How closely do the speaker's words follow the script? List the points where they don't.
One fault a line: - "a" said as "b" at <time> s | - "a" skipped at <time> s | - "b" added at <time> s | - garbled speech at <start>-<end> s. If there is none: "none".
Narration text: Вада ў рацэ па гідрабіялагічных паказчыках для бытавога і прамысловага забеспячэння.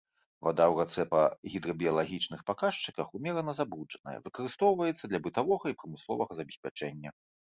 - "умерана забруджаная выкарыстоўваецца" added at 3.2 s